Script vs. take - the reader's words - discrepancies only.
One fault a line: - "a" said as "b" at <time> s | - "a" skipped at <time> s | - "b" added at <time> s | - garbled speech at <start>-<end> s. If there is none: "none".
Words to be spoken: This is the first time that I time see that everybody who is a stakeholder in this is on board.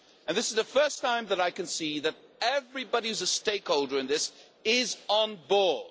- "time" said as "can" at 1.5 s